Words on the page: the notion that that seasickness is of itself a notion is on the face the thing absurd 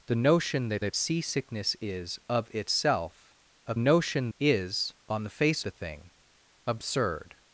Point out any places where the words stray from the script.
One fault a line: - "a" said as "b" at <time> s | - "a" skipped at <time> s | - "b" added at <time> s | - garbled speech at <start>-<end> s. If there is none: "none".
none